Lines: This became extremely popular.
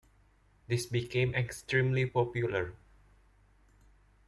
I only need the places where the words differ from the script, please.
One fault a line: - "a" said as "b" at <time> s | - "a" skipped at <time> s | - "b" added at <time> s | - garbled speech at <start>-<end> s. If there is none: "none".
none